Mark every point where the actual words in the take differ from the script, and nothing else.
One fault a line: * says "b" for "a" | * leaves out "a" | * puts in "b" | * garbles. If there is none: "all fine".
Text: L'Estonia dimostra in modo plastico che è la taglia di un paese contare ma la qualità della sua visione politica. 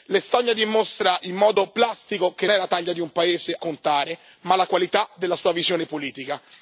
all fine